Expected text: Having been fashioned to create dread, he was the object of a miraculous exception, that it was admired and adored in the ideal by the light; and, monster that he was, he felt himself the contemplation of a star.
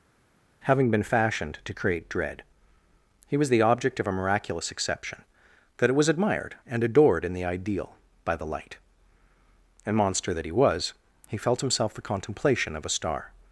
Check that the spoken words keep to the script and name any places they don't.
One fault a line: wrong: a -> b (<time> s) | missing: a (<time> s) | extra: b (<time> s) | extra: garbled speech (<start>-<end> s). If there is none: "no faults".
no faults